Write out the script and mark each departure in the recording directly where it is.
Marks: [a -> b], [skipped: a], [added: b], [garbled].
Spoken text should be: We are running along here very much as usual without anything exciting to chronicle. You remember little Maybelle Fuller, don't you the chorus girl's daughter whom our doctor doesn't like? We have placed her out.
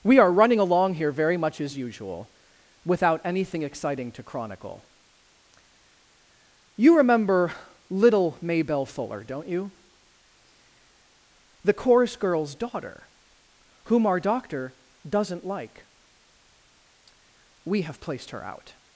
We are running along here very much as usual without anything exciting to chronicle. You remember little Maybelle Fuller, don't you the chorus girl's daughter whom our doctor doesn't like? We have placed her out.